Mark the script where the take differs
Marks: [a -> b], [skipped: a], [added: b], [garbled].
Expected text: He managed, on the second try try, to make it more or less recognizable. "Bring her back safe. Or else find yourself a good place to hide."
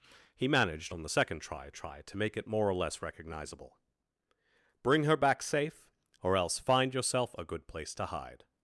He managed, on the second try try, to make it more or less recognizable. "Bring her back safe. Or else find yourself a good place to hide."